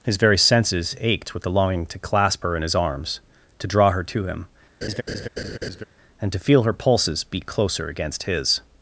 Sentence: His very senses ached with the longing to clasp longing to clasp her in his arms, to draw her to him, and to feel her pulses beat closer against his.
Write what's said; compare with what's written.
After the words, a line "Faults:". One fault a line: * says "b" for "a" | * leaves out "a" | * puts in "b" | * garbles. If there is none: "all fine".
His very senses ached with the longing to clasp her in his arms, to draw her to him, and to feel her pulses beat closer against his.
Faults:
* leaves out "longing to clasp"